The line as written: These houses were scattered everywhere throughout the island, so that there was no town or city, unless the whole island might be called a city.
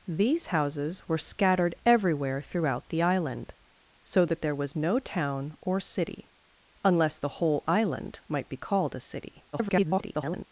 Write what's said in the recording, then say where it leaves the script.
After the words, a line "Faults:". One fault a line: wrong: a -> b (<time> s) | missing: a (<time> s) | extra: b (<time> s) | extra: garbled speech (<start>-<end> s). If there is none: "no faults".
These houses were scattered everywhere throughout the island, so that there was no town or city, unless the whole island might be called a city. [garbled]
Faults:
extra: garbled speech (9.5-10.4 s)